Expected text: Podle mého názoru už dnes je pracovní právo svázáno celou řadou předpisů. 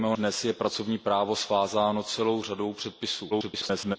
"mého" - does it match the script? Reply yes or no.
no